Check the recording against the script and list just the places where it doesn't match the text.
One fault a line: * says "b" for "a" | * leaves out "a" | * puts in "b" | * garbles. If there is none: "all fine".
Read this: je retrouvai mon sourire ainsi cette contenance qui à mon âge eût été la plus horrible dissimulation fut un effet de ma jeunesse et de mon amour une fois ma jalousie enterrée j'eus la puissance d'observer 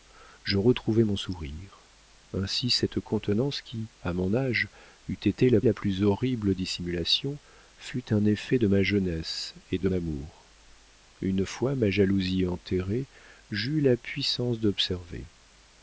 * puts in "la"
* leaves out "mon"